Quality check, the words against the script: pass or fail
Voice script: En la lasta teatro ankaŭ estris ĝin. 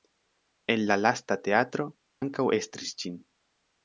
pass